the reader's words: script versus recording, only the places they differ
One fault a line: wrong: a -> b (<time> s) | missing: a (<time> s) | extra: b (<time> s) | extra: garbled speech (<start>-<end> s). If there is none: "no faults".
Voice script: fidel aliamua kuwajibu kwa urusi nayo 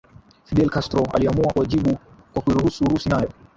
extra: castro (0.7 s)
extra: kuiruhusu (2.4 s)